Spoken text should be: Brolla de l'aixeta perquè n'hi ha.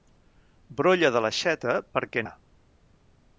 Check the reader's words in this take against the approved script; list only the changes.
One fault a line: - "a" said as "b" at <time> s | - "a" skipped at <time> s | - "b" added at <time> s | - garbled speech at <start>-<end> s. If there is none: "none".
- "n'hi" skipped at 2.2 s